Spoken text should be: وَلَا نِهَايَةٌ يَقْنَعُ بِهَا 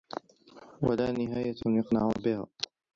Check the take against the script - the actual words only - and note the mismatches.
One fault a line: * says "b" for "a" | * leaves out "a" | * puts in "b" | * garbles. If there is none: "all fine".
all fine